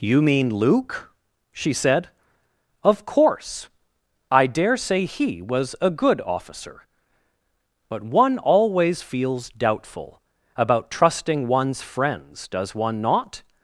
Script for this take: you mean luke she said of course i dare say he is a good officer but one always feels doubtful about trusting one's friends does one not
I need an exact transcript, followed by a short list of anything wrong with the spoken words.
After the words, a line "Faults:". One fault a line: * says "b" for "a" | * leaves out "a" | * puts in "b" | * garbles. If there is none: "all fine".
you mean luke she said of course i dare say he was a good officer but one always feels doubtful about trusting one's friends does one not
Faults:
* says "was" for "is"